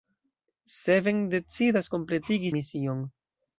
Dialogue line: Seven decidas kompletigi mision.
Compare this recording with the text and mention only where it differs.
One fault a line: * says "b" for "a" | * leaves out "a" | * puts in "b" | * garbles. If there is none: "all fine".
all fine